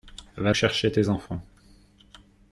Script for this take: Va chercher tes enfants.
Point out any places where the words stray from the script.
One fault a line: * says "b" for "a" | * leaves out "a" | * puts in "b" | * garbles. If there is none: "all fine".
all fine